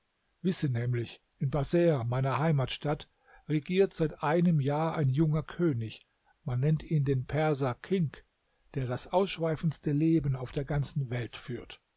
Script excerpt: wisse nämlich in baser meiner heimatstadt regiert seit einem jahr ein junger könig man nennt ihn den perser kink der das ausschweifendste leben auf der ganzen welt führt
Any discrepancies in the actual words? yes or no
no